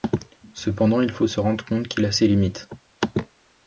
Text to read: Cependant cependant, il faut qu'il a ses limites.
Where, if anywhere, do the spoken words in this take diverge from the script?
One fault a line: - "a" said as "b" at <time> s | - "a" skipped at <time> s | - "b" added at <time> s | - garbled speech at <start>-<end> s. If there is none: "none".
- "cependant" skipped at 1.0 s
- "se rendre compte" added at 1.3 s